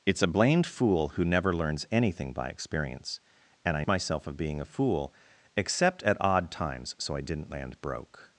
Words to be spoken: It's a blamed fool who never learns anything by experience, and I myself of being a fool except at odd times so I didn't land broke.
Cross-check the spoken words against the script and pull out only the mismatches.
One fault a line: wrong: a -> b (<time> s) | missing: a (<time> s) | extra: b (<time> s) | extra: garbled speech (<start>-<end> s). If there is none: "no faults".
no faults